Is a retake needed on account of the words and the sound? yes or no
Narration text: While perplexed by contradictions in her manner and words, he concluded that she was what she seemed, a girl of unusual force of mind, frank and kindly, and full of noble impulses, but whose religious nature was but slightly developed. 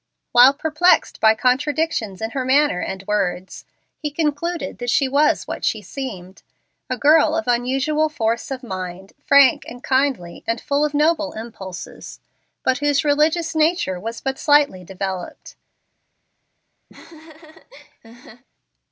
yes